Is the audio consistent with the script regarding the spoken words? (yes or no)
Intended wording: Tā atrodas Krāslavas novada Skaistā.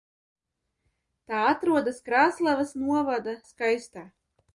yes